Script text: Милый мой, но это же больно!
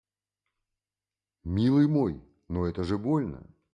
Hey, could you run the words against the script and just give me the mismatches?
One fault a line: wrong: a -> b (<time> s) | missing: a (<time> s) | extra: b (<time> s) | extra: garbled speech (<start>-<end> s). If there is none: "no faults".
no faults